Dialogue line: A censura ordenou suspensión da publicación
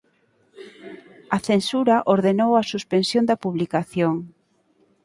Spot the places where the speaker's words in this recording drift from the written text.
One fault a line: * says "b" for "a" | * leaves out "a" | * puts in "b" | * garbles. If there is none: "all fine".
* puts in "a"